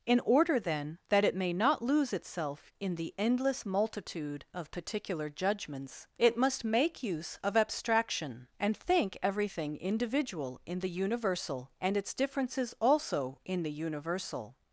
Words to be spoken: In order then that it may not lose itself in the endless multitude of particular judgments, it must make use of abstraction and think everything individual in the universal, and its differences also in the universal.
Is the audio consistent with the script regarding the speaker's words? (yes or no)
yes